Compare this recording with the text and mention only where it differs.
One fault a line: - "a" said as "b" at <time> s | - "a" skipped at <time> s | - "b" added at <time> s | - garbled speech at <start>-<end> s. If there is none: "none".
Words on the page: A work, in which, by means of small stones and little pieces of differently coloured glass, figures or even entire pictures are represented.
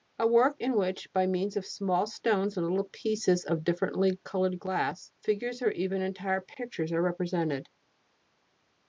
none